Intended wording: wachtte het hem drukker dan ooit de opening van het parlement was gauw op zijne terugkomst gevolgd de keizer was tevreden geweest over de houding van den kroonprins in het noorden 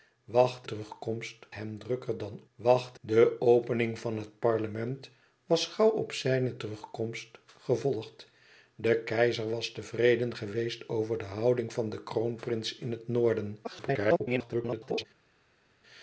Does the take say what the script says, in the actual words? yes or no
no